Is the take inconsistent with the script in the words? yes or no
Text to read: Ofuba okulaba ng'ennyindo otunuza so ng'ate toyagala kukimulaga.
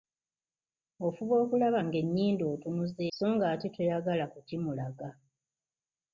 no